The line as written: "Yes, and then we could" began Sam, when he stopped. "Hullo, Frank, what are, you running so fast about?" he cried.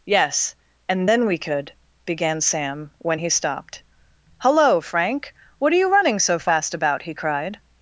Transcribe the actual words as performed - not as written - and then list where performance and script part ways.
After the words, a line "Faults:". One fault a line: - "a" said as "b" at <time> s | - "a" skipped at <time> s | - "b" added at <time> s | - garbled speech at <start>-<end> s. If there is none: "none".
"Yes, and then we could" began Sam, when he stopped. "Hullo, Frank, what are, you running so fast about?" he cried.
Faults:
none